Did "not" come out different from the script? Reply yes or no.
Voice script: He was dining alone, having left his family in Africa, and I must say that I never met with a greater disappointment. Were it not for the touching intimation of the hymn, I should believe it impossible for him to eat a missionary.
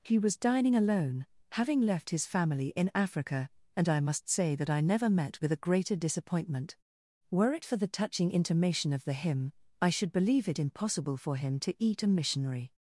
yes